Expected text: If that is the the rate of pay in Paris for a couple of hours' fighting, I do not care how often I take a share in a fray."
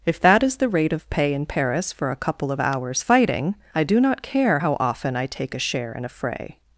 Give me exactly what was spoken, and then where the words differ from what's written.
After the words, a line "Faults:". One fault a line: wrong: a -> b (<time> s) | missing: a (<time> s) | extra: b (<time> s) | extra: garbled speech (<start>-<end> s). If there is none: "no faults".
If that is the rate of pay in Paris for a couple of hours' fighting, I do not care how often I take a share in a fray."
Faults:
missing: the (0.7 s)